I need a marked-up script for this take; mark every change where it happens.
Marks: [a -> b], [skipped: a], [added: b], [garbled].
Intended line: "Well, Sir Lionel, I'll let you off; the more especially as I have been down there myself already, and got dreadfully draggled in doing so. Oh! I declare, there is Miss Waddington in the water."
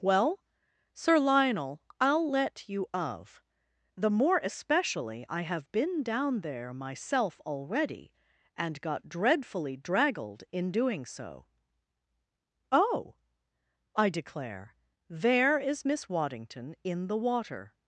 "Well, Sir Lionel, I'll let you [off; -> of] the more especially [skipped: as] I have been down there myself already, and got dreadfully draggled in doing so. Oh! I declare, there is Miss Waddington in the water."